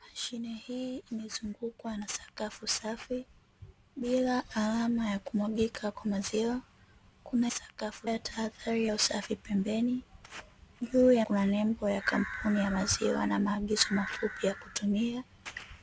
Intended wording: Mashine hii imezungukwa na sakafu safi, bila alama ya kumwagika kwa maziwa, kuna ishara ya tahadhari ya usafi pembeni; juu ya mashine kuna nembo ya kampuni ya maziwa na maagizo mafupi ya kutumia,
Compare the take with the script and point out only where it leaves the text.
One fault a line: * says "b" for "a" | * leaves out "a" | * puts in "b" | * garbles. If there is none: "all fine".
* says "sakafu" for "ishara"
* leaves out "mashine"